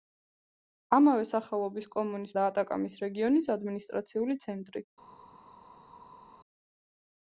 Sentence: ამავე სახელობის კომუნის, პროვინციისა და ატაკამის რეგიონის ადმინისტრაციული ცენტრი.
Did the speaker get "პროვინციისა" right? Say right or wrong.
wrong